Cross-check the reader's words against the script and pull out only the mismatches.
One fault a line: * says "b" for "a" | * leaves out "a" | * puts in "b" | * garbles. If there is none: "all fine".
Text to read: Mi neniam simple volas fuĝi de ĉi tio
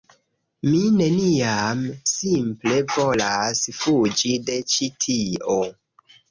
all fine